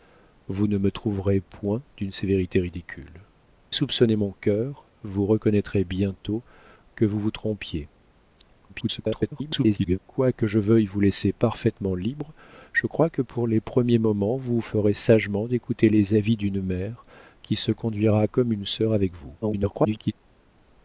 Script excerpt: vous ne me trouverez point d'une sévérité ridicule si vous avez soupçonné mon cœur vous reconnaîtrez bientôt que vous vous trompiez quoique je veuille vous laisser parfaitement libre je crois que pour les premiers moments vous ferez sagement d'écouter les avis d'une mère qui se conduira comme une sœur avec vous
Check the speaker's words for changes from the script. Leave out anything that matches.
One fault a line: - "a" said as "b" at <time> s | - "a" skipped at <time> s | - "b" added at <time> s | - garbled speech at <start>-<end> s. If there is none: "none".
- "si vous avez" skipped at 3.2 s
- garbled speech at 8.7-10.0 s
- garbled speech at 19.4-20.1 s